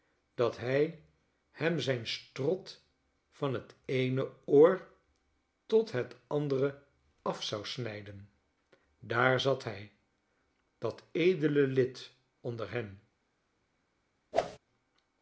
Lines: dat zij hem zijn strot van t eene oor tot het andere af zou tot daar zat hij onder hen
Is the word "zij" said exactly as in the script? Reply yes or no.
no